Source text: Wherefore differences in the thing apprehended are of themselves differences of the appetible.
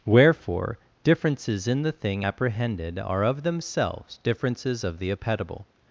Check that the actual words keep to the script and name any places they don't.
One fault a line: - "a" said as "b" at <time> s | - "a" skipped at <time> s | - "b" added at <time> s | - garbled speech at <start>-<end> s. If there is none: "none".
none